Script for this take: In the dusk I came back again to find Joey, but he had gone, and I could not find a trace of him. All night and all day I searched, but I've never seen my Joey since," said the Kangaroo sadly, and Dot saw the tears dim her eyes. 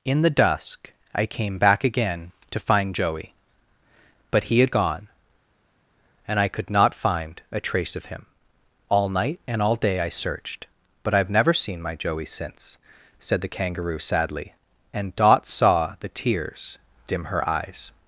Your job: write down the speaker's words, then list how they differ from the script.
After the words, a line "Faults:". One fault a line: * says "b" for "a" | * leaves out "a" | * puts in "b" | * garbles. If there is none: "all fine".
In the dusk I came back again to find Joey, but he had gone, and I could not find a trace of him. All night and all day I searched, but I've never seen my Joey since," said the Kangaroo sadly, and Dot saw the tears dim her eyes.
Faults:
all fine